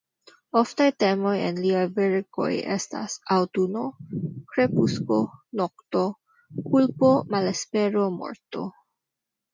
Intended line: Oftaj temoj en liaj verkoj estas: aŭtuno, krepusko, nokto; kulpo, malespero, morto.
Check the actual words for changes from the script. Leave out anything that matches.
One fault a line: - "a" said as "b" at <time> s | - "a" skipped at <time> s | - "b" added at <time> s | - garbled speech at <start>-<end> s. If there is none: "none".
none